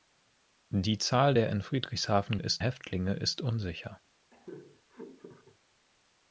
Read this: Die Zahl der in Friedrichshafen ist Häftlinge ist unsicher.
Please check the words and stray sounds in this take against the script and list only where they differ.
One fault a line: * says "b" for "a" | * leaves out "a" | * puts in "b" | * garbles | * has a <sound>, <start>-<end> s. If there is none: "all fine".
* has a laugh, 4.3-5.6 s